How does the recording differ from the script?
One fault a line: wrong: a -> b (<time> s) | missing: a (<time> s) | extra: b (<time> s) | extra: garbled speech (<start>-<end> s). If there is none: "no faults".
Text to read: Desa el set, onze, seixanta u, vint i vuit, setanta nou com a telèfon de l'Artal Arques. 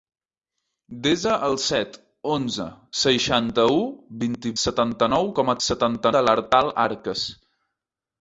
missing: vuit (4.5 s)
wrong: telèfon -> setanta (5.7 s)